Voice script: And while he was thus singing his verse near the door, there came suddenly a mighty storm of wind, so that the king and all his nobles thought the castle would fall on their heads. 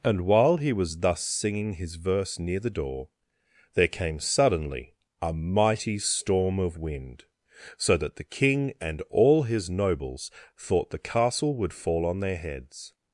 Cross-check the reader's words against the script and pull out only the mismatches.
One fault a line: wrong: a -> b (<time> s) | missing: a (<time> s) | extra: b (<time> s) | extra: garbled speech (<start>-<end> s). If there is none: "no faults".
no faults